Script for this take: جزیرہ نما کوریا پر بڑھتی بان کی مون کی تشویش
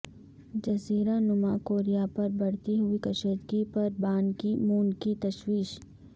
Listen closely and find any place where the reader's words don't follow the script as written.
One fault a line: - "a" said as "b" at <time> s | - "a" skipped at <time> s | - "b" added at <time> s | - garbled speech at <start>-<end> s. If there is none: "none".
- "ہوئی کشیدگی پر" added at 2.8 s